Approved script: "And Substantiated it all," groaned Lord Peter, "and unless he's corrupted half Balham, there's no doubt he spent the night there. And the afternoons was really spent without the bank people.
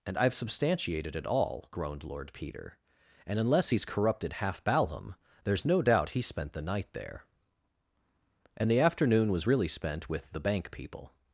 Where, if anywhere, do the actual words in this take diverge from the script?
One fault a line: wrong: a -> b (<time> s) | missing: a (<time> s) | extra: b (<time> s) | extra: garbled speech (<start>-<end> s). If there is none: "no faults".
extra: I've (0.2 s)
wrong: afternoons -> afternoon (8.8 s)
wrong: without -> with (10.1 s)